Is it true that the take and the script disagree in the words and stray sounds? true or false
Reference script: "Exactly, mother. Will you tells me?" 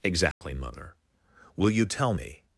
true